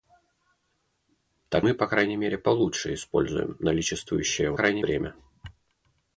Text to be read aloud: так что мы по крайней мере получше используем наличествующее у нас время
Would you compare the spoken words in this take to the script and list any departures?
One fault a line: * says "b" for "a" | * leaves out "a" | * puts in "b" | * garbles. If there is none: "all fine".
* leaves out "что"
* says "крайней" for "нас"